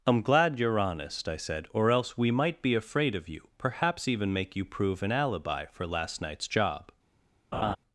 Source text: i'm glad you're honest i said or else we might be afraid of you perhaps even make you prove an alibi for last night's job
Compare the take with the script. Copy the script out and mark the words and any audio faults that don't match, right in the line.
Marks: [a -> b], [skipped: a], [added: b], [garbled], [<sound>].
i'm glad you're honest i said or else we might be afraid of you perhaps even make you prove an alibi for last night's job [laugh]